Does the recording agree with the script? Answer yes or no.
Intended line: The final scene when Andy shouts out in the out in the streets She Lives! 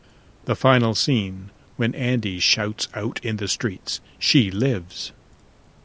no